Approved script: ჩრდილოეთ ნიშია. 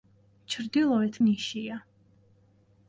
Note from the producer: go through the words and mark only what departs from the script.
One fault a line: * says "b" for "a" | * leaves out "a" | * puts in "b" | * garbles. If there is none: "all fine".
all fine